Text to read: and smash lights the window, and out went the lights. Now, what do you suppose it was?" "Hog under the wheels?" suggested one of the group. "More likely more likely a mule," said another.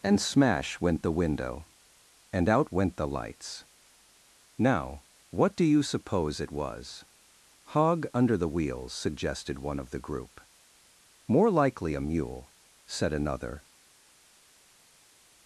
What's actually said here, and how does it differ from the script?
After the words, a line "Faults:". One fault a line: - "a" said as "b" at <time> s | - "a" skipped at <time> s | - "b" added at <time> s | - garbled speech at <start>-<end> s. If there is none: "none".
and smash went the window, and out went the lights. Now, what do you suppose it was?" "Hog under the wheels?" suggested one of the group. "More likely a mule," said another.
Faults:
- "lights" said as "went" at 0.8 s
- "more likely" skipped at 11.9 s